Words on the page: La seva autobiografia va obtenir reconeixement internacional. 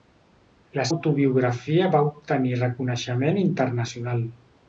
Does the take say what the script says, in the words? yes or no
no